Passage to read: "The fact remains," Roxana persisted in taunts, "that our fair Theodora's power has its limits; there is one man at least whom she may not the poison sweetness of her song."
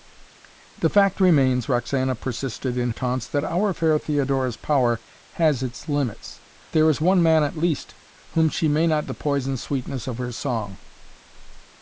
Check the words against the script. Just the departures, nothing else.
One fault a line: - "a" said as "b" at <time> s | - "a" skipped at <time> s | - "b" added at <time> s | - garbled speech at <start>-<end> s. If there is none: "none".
none